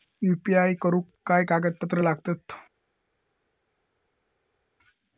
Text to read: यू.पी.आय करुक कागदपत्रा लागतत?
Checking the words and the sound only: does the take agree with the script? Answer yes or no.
no